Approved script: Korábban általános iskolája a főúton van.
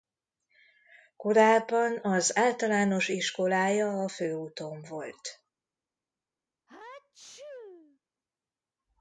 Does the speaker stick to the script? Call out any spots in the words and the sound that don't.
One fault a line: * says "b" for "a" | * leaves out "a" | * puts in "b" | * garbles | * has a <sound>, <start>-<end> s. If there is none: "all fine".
* puts in "az"
* says "volt" for "van"
* has a sneeze, 6.7-8.0 s